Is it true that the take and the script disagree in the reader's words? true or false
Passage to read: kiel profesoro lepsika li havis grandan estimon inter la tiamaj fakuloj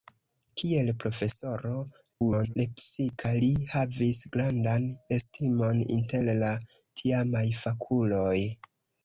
true